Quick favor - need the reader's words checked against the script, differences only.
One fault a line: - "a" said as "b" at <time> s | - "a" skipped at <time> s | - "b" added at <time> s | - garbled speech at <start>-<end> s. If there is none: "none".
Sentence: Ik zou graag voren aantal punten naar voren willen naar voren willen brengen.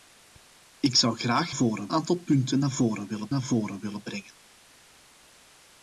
none